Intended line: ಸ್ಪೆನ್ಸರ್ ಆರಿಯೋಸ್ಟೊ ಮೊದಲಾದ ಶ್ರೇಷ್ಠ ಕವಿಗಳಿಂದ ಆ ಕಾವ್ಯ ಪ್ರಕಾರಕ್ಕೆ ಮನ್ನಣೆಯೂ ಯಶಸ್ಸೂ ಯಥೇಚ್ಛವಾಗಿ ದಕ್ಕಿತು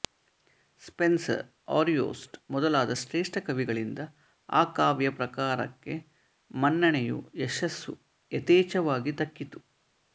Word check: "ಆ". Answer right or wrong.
right